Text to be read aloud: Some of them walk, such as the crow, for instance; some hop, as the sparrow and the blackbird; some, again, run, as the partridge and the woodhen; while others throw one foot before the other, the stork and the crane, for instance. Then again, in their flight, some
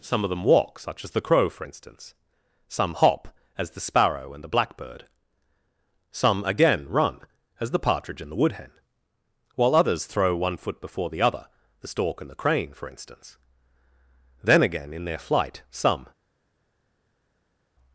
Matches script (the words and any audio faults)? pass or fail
pass